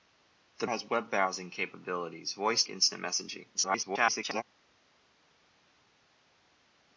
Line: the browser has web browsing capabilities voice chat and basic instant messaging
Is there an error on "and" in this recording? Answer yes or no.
yes